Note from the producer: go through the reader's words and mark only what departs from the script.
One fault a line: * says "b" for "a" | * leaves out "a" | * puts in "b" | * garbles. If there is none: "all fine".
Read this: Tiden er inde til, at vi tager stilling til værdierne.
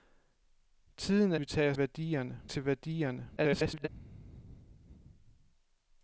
* leaves out "inde til at"
* says "værdierne" for "stilling"
* garbles